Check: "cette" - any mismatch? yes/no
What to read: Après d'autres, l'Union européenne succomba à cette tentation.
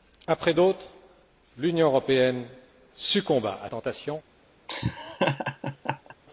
yes